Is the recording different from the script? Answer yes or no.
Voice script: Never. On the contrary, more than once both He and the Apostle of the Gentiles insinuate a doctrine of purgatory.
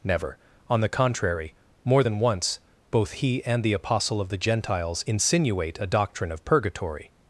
no